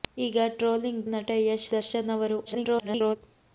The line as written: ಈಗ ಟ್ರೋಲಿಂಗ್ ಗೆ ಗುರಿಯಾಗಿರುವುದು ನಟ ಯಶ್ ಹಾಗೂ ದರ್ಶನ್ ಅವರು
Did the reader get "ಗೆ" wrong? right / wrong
wrong